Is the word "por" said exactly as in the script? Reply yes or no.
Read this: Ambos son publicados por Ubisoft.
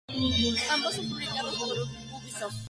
yes